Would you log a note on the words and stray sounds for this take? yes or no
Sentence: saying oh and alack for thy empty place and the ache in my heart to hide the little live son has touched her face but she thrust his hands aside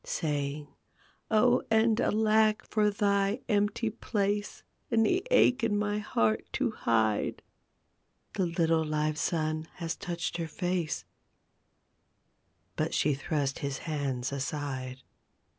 no